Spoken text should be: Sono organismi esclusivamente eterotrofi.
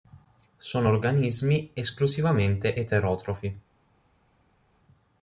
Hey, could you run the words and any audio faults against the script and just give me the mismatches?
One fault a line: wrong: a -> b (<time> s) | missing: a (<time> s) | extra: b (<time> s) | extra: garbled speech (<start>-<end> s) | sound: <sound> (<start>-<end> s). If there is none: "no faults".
no faults